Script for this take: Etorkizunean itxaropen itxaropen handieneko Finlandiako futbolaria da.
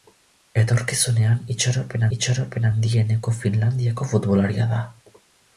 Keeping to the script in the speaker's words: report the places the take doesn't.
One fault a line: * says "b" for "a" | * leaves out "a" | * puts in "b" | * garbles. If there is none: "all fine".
all fine